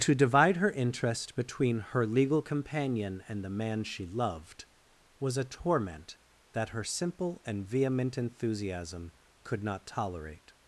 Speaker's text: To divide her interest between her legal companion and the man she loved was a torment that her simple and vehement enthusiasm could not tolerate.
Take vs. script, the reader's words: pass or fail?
pass